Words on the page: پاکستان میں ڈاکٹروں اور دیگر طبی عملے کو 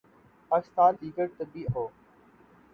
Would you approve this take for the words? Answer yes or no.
no